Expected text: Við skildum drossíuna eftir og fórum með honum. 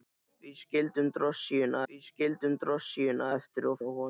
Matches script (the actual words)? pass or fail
fail